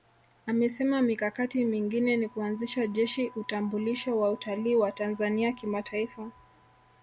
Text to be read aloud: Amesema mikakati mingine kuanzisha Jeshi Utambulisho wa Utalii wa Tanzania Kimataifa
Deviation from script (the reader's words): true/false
true